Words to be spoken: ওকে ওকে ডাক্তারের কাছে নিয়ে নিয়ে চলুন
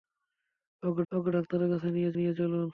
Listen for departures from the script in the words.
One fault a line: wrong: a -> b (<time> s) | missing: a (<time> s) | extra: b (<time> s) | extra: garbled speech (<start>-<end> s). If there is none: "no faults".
no faults